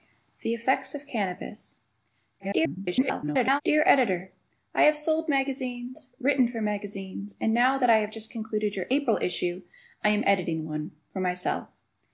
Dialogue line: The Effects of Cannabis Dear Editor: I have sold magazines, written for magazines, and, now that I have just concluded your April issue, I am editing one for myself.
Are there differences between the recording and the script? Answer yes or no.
yes